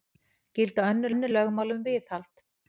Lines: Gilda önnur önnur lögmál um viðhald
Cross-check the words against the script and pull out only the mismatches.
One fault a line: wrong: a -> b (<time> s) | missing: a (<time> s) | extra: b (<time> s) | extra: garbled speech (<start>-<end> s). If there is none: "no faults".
no faults